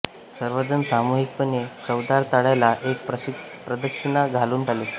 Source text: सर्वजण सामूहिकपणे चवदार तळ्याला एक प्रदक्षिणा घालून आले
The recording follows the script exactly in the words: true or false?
true